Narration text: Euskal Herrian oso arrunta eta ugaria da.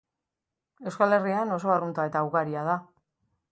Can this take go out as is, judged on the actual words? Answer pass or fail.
pass